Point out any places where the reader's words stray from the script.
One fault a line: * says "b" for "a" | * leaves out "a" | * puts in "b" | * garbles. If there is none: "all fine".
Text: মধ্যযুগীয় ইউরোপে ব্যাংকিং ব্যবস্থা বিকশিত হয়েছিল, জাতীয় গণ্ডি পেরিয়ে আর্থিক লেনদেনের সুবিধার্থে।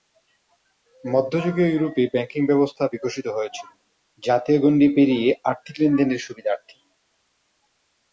all fine